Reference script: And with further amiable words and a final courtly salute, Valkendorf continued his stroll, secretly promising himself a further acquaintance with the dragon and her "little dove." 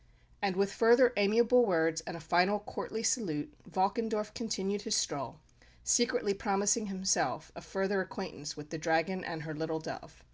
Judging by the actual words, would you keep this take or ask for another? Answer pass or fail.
pass